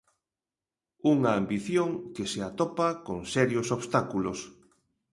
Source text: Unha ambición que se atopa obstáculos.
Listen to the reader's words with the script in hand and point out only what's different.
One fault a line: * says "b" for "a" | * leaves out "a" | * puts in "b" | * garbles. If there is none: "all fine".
* puts in "con serios"